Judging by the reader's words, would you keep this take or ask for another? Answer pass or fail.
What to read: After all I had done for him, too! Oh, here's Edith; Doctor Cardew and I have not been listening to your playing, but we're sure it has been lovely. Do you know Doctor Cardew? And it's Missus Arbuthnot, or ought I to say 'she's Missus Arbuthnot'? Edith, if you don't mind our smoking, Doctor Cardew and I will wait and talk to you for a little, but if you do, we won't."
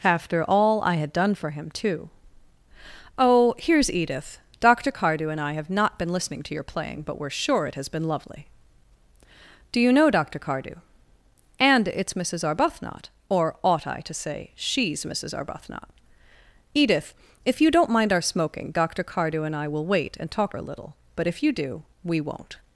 fail